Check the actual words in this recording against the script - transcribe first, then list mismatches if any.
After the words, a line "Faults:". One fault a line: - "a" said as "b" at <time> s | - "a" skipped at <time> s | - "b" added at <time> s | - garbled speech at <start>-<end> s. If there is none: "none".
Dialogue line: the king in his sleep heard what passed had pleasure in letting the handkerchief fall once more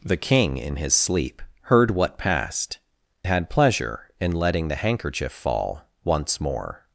the king in his sleep heard what passed had pleasure in letting the handkerchief fall once more
Faults:
none